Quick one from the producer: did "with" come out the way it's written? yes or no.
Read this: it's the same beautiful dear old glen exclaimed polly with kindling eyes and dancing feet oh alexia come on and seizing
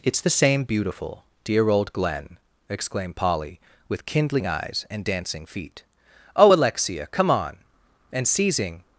yes